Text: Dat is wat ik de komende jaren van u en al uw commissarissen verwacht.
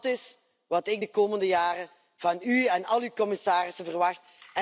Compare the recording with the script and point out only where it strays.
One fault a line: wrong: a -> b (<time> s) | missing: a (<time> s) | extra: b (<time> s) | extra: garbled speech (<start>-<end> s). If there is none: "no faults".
no faults